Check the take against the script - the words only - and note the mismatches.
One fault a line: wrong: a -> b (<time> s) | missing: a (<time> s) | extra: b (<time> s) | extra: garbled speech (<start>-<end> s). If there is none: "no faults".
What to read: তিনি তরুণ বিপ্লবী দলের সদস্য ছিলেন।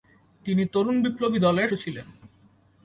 missing: সদস্য (1.7 s)